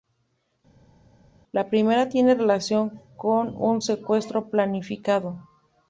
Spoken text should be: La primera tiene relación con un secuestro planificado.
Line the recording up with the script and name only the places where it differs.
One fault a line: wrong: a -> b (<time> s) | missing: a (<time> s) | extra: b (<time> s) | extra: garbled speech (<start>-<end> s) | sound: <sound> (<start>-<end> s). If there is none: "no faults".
no faults